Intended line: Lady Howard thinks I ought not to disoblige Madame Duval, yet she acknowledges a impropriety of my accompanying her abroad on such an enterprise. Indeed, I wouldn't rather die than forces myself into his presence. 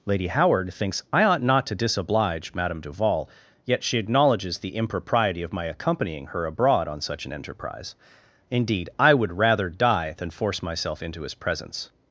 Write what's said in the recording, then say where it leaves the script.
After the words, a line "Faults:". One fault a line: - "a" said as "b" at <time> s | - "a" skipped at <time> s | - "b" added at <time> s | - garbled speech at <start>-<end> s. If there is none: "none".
Lady Howard thinks I ought not to disoblige Madame Duval, yet she acknowledges the impropriety of my accompanying her abroad on such an enterprise. Indeed, I would rather die than force myself into his presence.
Faults:
- "a" said as "the" at 4.6 s
- "wouldn't" said as "would" at 9.1 s
- "forces" said as "force" at 10.3 s